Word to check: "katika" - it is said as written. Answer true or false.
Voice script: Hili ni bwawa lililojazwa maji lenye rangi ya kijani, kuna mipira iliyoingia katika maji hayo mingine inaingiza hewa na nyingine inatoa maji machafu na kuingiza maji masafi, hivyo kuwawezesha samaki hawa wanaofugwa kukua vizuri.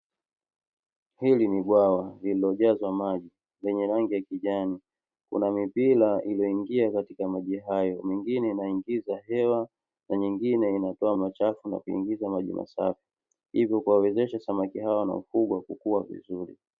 true